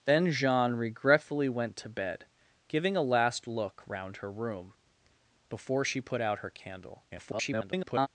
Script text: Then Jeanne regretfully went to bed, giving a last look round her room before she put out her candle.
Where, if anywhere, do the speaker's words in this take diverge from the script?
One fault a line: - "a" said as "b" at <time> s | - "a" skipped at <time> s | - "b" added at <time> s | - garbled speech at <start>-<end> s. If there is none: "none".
- garbled speech at 7.1-8.1 s